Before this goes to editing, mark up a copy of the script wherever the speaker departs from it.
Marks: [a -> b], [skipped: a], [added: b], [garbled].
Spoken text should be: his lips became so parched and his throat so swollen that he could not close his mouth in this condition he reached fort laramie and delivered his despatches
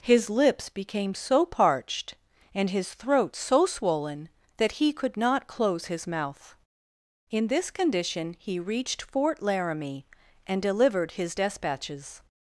his lips became so parched and his throat so swollen that he could not close his mouth in this condition he reached fort laramie and delivered his despatches